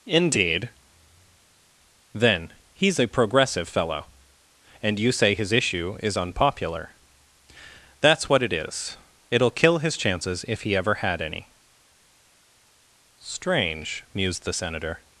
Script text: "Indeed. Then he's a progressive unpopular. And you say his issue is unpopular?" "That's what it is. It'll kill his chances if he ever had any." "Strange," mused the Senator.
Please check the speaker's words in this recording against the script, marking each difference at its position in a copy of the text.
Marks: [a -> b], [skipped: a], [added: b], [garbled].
"Indeed. Then he's a progressive [unpopular. -> fellow] And you say his issue is unpopular?" "That's what it is. It'll kill his chances if he ever had any." "Strange," mused the Senator.